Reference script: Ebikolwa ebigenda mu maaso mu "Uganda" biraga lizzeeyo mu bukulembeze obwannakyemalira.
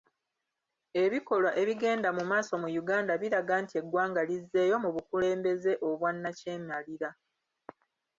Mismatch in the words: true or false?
true